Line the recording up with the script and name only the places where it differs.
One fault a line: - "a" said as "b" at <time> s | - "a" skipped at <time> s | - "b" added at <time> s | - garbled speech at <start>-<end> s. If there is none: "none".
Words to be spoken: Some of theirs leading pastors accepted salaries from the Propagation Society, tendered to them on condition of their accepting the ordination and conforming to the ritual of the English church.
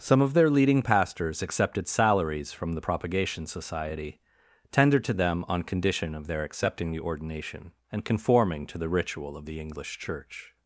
- "theirs" said as "their" at 0.3 s